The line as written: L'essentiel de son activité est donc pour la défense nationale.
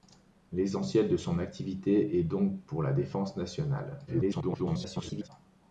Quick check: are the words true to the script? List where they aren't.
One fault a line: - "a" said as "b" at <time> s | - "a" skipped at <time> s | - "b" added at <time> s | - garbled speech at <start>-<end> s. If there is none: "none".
- garbled speech at 4.1-5.3 s